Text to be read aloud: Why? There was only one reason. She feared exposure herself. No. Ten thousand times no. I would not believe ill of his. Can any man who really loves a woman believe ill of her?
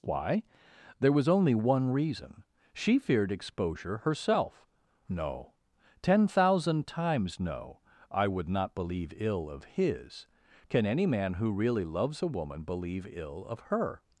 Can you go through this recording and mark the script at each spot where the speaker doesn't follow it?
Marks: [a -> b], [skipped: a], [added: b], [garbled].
Why? There was only one reason. She feared exposure herself. No. Ten thousand times no. I would not believe ill of his. Can any man who really loves a woman believe ill of her?